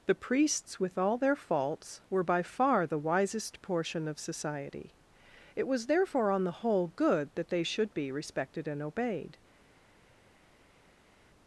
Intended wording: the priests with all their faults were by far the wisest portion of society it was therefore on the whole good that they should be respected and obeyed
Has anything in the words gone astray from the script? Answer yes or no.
no